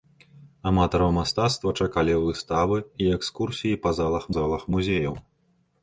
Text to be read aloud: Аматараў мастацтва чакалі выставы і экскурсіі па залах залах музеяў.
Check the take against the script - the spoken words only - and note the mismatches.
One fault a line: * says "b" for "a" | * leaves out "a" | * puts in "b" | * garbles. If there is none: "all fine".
all fine